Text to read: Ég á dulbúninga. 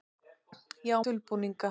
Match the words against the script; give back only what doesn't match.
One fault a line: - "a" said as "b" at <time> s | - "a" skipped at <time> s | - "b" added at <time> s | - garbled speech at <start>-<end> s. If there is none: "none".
none